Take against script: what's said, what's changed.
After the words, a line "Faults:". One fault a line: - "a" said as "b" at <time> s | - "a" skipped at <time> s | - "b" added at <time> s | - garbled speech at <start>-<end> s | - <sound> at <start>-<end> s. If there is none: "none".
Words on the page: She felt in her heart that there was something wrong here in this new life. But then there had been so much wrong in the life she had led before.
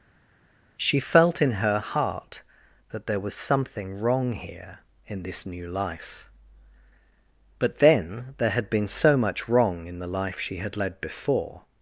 She felt in her heart that there was something wrong here in this new life. But then there had been so much wrong in the life she had led before.
Faults:
none